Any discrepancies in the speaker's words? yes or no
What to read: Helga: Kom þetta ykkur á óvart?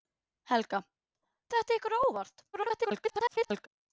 yes